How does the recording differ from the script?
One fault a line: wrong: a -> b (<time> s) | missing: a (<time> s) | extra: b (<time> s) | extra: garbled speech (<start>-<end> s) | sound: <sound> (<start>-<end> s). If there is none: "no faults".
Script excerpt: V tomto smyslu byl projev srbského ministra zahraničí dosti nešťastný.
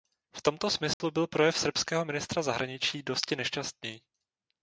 sound: dropout (0.9-1.0 s)